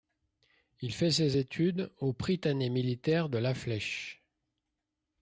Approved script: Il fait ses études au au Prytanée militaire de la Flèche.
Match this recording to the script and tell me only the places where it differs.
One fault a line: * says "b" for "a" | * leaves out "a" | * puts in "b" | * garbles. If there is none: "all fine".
* leaves out "au"